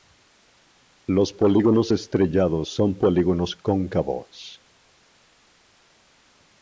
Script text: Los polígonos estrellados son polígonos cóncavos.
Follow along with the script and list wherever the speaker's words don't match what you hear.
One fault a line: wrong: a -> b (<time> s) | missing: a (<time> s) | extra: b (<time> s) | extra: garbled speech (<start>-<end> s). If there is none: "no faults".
no faults